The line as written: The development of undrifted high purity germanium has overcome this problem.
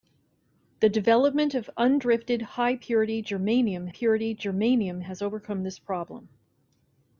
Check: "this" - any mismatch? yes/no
no